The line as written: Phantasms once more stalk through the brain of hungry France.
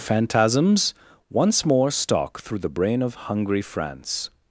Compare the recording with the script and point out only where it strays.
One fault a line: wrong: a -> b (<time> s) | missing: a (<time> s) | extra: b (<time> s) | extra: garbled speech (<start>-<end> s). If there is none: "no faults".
no faults